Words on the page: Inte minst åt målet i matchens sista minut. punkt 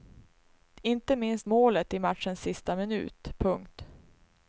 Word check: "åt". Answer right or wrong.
wrong